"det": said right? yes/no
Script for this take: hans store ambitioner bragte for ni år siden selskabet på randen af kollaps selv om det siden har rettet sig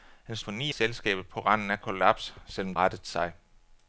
no